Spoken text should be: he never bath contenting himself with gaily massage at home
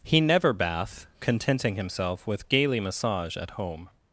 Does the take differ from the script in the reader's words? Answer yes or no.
no